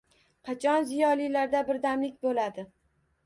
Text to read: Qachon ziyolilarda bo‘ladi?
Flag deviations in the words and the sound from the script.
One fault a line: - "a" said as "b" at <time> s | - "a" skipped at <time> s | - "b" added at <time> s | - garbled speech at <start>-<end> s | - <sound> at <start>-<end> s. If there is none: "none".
- "birdamlik" added at 1.7 s